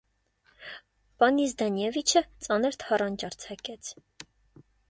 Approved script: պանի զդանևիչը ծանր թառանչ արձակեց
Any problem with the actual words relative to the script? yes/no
no